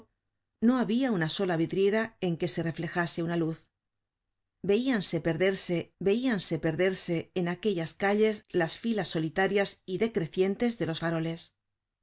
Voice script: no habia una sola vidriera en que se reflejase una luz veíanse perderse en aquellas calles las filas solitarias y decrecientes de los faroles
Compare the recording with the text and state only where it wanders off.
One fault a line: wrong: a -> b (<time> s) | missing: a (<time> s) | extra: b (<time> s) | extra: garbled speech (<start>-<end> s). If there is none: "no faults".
extra: veíanse perderse (6.0 s)